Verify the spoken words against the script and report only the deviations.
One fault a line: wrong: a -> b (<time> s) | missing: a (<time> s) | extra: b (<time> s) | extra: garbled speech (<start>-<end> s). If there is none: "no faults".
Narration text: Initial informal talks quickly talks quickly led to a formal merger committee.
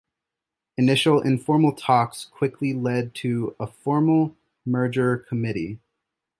missing: talks quickly (2.7 s)